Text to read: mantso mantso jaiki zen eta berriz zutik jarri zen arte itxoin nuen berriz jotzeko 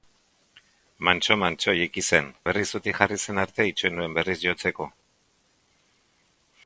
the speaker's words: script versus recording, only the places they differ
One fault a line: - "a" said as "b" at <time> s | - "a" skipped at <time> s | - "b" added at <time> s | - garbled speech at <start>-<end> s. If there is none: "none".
- "eta" skipped at 2.3 s